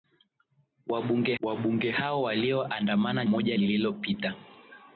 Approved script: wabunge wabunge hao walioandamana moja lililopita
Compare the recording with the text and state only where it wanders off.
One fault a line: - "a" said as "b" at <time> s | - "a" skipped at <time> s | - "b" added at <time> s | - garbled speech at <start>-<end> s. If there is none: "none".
none